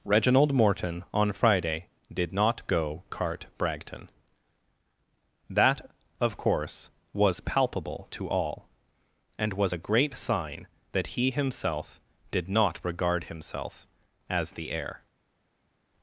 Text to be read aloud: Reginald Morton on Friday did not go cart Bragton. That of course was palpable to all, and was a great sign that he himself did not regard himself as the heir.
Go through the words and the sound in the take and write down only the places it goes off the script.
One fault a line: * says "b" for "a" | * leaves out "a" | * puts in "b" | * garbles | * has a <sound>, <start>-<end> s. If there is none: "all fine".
all fine